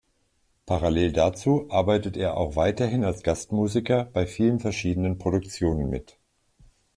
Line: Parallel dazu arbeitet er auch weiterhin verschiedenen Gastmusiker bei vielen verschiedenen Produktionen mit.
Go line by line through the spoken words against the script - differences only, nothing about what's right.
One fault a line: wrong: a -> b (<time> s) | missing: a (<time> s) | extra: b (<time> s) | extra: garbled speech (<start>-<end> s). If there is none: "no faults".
wrong: verschiedenen -> als (3.0 s)